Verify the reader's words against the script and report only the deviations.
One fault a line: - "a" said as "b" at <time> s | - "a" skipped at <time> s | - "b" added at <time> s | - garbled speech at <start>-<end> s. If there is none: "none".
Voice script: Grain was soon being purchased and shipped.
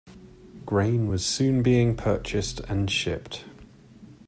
none